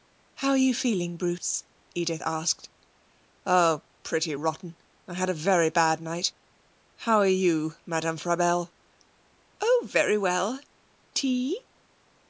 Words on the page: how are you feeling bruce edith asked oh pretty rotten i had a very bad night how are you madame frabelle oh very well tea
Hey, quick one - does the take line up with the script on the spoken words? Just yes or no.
yes